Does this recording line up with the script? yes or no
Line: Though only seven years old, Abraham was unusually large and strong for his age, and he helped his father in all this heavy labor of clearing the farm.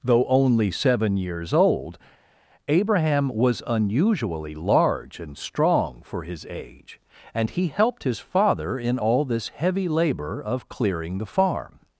yes